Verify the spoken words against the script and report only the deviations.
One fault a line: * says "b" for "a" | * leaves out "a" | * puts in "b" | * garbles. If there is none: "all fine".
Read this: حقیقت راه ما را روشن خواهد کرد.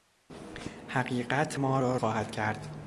* leaves out "راه"
* leaves out "روشن"